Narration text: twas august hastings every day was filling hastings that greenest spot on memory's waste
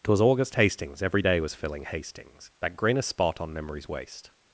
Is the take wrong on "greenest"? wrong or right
right